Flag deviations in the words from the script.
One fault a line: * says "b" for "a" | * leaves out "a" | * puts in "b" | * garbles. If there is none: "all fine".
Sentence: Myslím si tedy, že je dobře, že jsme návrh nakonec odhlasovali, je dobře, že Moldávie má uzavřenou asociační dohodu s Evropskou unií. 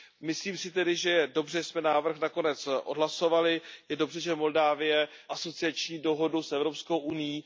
* leaves out "má uzavřenou"